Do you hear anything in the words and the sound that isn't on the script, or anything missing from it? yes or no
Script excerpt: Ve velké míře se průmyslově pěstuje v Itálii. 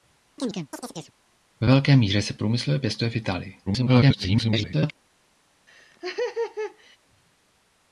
yes